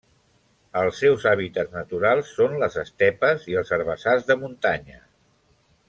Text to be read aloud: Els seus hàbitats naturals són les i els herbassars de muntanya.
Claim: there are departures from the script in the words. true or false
true